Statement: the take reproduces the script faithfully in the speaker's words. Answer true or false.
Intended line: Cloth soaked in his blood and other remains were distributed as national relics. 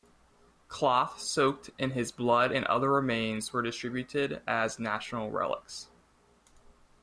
true